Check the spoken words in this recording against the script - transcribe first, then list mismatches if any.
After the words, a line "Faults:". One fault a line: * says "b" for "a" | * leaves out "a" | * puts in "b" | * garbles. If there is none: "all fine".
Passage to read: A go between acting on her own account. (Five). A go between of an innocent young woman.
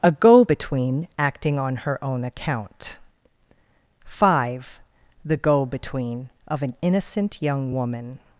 A go between acting on her own account. (Five). The go between of an innocent young woman.
Faults:
* says "The" for "A"